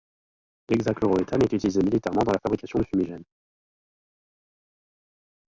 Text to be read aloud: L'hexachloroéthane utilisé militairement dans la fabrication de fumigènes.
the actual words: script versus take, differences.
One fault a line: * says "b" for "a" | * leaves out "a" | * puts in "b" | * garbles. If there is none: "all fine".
* puts in "est"